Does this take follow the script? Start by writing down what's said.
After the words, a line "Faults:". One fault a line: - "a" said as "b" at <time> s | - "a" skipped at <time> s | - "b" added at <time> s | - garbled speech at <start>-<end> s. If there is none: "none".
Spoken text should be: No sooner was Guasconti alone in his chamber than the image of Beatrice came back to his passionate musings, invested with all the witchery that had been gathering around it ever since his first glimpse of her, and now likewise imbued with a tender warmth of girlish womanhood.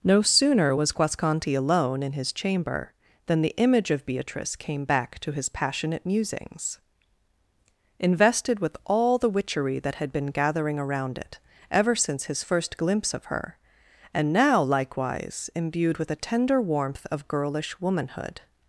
No sooner was Guasconti alone in his chamber than the image of Beatrice came back to his passionate musings, invested with all the witchery that had been gathering around it ever since his first glimpse of her, and now likewise imbued with a tender warmth of girlish womanhood.
Faults:
none